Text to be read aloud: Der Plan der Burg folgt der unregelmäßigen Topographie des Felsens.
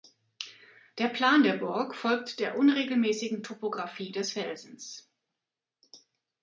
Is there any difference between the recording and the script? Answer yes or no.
no